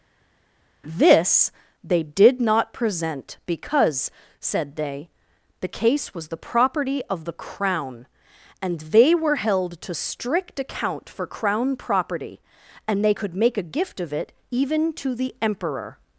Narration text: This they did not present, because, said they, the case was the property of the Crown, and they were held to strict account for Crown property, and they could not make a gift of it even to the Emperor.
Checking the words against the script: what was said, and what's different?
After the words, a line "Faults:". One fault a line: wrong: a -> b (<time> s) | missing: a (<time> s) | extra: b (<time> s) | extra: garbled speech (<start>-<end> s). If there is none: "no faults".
This they did not present, because, said they, the case was the property of the Crown, and they were held to strict account for Crown property, and they could make a gift of it even to the Emperor.
Faults:
missing: not (13.3 s)